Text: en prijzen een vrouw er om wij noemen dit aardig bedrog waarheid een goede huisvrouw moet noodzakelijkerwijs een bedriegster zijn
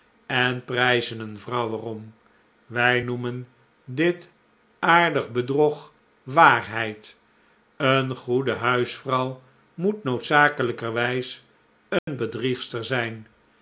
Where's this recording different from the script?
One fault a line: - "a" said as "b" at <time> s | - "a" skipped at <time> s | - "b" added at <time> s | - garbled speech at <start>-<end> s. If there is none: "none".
none